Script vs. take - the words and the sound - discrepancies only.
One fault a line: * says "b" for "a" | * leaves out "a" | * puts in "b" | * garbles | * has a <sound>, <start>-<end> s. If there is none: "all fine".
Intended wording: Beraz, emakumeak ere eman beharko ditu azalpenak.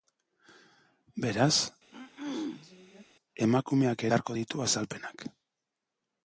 * has a throat clearing, 1.9-3.0 s
* leaves out "ere eman"